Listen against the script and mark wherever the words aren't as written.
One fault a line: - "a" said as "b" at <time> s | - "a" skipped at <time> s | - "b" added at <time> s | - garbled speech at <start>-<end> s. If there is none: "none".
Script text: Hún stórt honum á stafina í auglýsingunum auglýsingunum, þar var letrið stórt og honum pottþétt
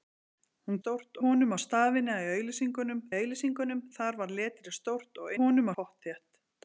none